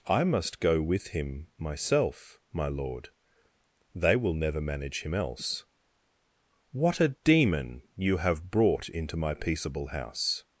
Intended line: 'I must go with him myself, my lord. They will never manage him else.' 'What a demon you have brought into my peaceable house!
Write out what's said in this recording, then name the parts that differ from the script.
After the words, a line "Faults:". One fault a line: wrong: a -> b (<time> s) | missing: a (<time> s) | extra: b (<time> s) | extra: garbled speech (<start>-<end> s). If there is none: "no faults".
'I must go with him myself, my lord. They will never manage him else.' 'What a demon you have brought into my peaceable house!
Faults:
no faults